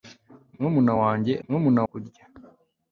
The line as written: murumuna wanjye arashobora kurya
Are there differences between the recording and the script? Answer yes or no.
yes